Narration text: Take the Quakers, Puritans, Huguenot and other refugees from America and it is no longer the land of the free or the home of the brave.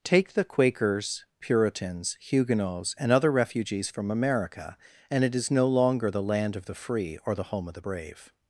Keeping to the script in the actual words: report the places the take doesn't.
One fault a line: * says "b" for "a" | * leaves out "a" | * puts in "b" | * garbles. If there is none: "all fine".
* says "Huguenots" for "Huguenot"